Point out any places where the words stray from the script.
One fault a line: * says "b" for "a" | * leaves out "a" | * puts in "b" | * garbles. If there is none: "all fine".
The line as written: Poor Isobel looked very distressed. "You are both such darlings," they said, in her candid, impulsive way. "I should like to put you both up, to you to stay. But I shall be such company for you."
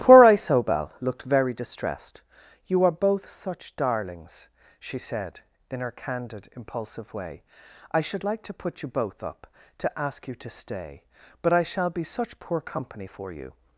* says "she" for "they"
* puts in "ask"
* puts in "poor"